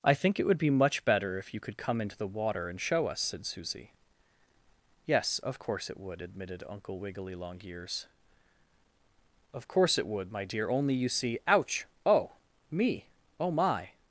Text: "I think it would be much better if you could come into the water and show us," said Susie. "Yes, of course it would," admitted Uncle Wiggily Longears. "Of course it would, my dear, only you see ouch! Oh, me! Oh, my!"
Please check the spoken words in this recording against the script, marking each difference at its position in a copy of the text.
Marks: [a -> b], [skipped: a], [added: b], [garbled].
"I think it would be much better if you could come into the water and show us," said Susie. "Yes, of course it would," admitted Uncle Wiggily Longears. "Of course it would, my dear, only you see ouch! Oh, me! Oh, my!"